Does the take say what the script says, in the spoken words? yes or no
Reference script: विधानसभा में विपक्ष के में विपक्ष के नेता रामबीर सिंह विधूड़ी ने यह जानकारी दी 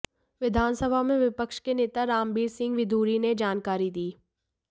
no